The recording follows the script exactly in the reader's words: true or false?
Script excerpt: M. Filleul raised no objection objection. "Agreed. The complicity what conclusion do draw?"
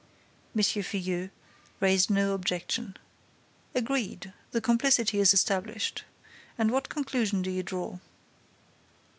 false